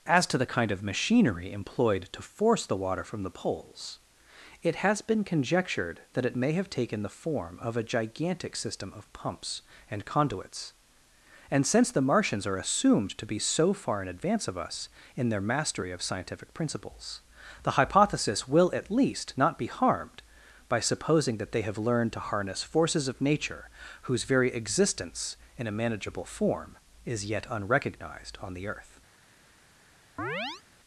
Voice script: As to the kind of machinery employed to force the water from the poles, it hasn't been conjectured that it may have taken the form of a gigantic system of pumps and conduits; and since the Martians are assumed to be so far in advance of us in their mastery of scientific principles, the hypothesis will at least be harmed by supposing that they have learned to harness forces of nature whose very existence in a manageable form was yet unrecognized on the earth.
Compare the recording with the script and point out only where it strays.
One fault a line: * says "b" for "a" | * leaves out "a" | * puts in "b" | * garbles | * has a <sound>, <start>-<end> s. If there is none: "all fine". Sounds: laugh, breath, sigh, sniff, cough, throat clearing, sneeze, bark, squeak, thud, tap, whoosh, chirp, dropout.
* says "has" for "hasn't"
* puts in "not"
* says "is" for "was"
* has a chirp, 30.2-30.6 s